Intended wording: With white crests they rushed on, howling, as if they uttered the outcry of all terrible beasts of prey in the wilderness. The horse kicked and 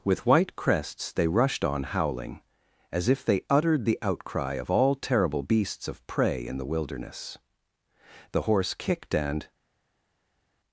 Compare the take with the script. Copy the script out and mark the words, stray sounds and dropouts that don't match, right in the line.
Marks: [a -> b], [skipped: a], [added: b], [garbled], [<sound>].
With white crests they rushed on, howling, as if they uttered the outcry of all terrible beasts of prey in the wilderness. The horse kicked and